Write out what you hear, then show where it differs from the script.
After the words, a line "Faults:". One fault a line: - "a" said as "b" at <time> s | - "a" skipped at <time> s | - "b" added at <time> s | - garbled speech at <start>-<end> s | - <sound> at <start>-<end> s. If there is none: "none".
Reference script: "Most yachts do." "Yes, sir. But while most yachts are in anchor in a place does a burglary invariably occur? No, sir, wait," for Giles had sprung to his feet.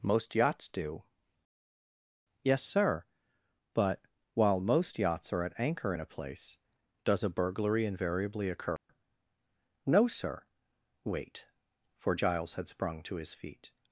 "Most yachts do." "Yes, sir. But while most yachts are at anchor in a place does a burglary invariably occur? No, sir, wait," for Giles had sprung to his feet.
Faults:
- "in" said as "at" at 5.4 s
- dropout at 8.8-8.9 s